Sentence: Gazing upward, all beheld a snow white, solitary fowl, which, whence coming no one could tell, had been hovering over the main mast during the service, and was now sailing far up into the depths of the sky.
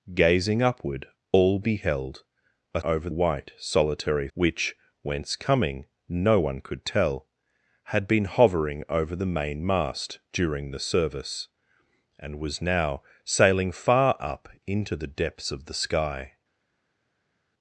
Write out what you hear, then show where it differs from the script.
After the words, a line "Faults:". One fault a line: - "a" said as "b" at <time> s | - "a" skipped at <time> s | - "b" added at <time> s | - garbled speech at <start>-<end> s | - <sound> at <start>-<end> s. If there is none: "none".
Gazing upward, all beheld a over white, solitary which, whence coming no one could tell, had been hovering over the main mast during the service, and was now sailing far up into the depths of the sky.
Faults:
- "snow" said as "over" at 2.8 s
- "fowl" skipped at 4.3 s